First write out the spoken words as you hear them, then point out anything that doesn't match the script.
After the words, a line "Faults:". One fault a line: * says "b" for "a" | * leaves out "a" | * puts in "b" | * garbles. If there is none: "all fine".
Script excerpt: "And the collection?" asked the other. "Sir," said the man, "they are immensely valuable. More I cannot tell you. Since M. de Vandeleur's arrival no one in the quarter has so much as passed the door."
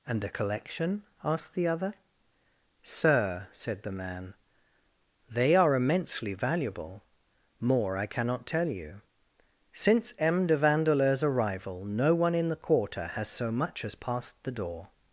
"And the collection?" asked the other. "Sir," said the man, "they are immensely valuable. More I cannot tell you. Since M. de Vandeleur's arrival no one in the quarter has so much as passed the door."
Faults:
all fine